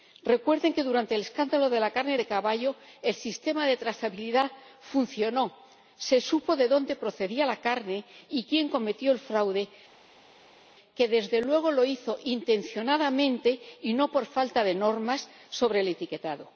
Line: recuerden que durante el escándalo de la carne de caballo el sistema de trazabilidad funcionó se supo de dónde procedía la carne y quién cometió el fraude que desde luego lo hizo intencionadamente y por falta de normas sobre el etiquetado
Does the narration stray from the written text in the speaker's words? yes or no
yes